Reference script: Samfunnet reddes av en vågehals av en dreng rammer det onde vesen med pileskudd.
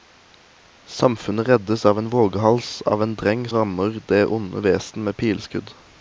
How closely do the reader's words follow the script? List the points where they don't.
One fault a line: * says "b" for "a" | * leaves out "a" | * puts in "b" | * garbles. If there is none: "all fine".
all fine